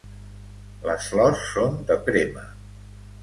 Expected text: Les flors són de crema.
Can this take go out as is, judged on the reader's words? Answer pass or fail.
pass